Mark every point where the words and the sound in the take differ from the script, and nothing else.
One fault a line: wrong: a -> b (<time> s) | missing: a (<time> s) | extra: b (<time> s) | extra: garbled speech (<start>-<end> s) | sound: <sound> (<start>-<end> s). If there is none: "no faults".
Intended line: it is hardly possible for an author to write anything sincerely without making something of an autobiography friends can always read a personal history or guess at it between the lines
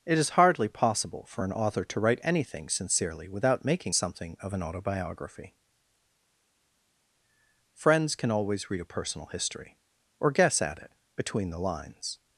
no faults